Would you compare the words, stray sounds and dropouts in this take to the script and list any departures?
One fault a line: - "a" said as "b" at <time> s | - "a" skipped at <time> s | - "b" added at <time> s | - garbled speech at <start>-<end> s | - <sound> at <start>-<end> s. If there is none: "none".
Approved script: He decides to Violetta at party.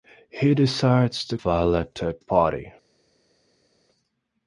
none